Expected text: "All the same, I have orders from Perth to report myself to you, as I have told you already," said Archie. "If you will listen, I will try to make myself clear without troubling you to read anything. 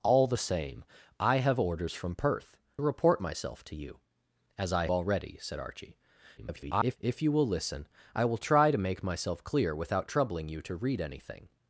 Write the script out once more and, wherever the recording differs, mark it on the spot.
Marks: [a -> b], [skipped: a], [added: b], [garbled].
"All the same, I have orders from Perth [skipped: to] report myself to you, as I [skipped: have told you] already," said Archie. [garbled] "If you will listen, I will try to make myself clear without troubling you to read anything.